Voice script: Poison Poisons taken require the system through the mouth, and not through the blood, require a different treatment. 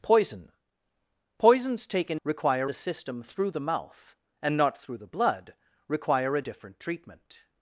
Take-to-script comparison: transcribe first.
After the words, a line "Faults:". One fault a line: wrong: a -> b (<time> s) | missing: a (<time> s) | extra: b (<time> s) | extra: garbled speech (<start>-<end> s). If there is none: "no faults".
Poison Poisons taken require the system through the mouth, and not through the blood, require a different treatment.
Faults:
no faults